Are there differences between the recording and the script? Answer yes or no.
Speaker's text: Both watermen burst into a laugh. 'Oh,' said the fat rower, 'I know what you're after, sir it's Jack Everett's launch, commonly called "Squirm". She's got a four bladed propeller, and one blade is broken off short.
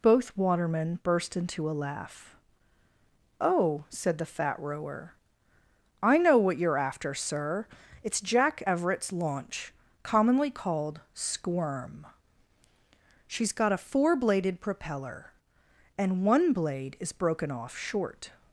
no